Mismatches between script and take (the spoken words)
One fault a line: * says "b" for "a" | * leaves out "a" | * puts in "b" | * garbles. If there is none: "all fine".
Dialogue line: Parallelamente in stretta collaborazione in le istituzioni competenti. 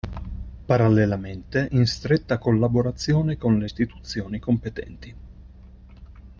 * says "con" for "in"